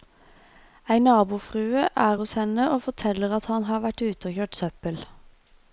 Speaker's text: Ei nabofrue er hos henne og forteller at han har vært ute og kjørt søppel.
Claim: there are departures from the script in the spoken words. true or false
false